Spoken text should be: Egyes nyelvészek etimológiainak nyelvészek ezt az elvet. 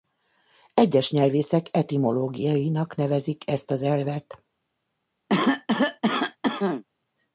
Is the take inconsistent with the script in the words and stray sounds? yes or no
yes